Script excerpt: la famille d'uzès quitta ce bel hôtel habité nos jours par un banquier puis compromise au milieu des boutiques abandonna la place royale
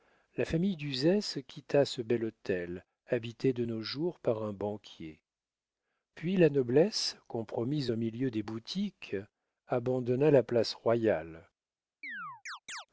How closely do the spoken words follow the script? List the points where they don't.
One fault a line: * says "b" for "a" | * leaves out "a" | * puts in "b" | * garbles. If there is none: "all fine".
* puts in "de"
* puts in "la noblesse"